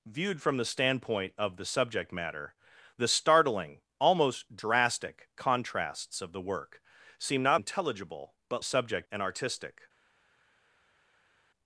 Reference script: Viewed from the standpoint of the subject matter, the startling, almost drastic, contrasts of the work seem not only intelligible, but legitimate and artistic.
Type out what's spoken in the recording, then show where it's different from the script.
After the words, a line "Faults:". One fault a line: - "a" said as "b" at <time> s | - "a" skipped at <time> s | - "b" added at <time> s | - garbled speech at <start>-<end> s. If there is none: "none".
Viewed from the standpoint of the subject matter, the startling, almost drastic, contrasts of the work seem not intelligible, but subject and artistic.
Faults:
- "only" skipped at 7.6 s
- "legitimate" said as "subject" at 8.6 s